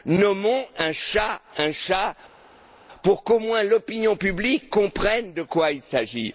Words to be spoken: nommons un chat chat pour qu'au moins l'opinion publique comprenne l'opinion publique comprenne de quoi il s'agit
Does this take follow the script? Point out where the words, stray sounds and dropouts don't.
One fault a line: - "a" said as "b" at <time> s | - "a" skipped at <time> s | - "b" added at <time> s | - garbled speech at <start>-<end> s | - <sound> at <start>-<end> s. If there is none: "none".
- "un" added at 1.6 s
- "l'opinion publique comprenne" skipped at 5.3 s